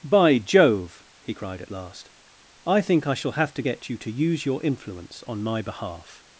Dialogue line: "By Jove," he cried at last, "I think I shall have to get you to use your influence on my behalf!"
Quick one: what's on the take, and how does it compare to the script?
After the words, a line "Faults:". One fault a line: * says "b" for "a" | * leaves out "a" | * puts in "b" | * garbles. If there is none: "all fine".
"By Jove," he cried at last, "I think I shall have to get you to use your influence on my behalf!"
Faults:
all fine